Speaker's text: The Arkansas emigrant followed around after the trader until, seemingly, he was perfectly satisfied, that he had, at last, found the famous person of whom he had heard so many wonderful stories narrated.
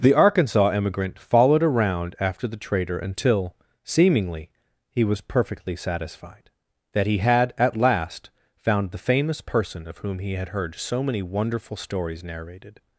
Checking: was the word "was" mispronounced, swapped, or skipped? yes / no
no